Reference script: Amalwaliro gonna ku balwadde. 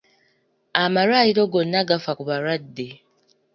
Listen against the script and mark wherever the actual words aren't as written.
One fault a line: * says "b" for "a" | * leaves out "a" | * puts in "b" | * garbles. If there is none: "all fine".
* puts in "gafa"